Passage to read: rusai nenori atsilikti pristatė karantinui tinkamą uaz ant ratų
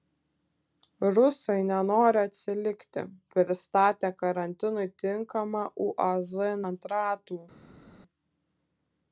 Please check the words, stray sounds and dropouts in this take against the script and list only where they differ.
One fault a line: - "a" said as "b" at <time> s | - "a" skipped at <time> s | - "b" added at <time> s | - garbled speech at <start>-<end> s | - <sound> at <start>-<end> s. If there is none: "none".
none